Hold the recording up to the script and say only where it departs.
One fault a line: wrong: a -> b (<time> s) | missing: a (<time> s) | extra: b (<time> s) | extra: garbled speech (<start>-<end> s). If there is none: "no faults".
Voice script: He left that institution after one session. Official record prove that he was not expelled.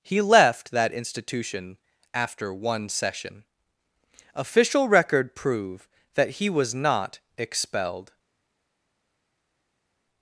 no faults